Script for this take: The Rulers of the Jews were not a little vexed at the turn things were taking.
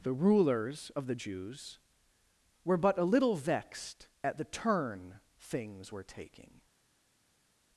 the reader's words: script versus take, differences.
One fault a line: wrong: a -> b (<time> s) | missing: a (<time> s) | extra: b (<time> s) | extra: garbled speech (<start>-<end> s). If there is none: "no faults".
wrong: not -> but (2.8 s)